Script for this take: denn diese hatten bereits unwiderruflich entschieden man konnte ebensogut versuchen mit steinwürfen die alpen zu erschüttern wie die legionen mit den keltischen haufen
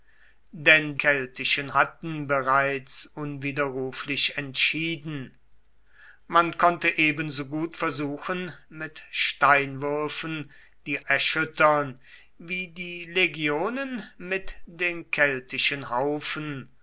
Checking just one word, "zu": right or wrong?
wrong